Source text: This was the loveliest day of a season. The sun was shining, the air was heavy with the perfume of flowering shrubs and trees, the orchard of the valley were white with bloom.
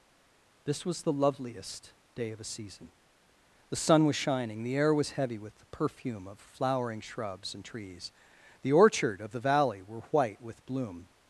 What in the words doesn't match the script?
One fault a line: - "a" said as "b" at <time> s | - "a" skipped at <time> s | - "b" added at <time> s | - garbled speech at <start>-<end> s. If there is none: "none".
none